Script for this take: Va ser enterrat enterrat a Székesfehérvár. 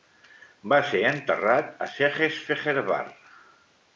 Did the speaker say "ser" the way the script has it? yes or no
yes